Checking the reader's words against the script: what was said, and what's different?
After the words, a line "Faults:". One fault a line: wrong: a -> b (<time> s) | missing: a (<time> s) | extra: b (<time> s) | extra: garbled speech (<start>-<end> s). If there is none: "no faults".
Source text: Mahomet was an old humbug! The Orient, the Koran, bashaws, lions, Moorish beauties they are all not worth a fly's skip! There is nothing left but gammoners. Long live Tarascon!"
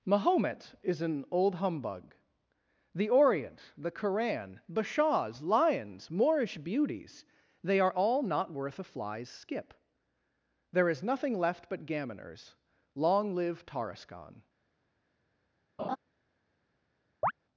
Mahomet is an old humbug! The Orient, the Koran, bashaws, lions, Moorish beauties they are all not worth a fly's skip! There is nothing left but gammoners. Long live Tarascon!"
Faults:
wrong: was -> is (0.8 s)